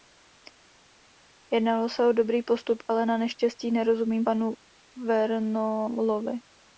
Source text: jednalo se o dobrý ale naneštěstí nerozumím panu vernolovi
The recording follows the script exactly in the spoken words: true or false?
false